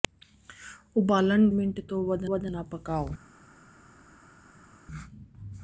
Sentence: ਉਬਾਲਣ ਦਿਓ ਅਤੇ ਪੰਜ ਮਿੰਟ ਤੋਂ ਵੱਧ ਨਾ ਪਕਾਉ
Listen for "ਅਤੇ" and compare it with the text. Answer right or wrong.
wrong